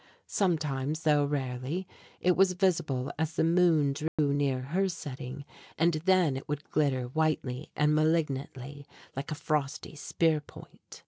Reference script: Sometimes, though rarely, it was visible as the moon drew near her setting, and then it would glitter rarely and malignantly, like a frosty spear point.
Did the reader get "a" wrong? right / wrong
right